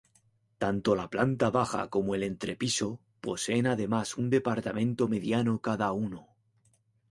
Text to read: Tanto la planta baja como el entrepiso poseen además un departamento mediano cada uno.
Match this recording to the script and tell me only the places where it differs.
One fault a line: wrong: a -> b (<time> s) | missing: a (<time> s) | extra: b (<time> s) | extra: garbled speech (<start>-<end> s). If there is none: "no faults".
no faults